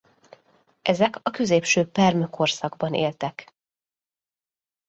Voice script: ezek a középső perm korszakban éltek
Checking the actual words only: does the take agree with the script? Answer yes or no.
yes